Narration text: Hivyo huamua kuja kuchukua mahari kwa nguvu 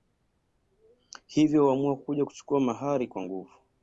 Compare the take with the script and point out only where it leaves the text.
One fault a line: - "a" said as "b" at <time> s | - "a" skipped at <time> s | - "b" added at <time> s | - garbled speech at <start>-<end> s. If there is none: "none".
none